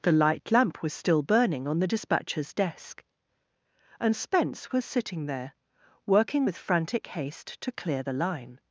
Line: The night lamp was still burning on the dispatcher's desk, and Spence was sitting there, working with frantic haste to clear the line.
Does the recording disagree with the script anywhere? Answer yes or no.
yes